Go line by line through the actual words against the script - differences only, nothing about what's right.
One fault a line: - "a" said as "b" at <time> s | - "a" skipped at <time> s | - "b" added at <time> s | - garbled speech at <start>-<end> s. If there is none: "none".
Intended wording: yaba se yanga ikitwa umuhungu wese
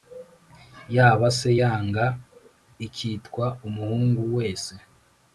none